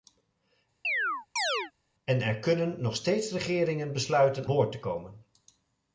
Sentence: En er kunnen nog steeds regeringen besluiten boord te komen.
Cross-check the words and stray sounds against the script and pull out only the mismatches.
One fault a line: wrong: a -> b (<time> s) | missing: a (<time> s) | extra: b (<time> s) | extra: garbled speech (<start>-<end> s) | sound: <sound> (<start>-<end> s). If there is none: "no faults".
sound: chirp (0.8-1.7 s)